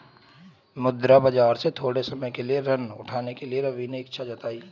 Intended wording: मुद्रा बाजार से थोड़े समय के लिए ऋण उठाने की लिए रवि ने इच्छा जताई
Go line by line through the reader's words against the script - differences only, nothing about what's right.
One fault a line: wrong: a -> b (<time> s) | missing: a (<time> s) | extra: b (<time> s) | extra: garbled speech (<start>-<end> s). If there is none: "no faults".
wrong: की -> के (3.3 s)